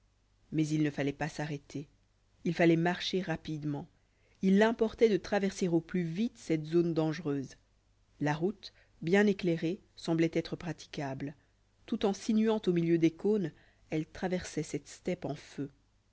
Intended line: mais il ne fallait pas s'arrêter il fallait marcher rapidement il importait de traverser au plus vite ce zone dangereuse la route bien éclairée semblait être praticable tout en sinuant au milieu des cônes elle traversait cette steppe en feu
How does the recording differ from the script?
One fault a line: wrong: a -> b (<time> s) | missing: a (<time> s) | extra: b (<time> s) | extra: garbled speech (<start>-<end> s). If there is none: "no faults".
wrong: ce -> cette (6.4 s)